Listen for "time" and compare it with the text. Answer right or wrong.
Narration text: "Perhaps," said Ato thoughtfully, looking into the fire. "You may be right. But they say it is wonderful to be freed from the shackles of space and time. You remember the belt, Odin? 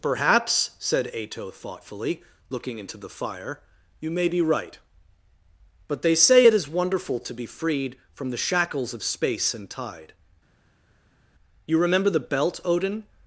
wrong